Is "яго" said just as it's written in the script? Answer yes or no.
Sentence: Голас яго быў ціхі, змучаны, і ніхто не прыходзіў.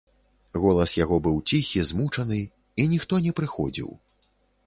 yes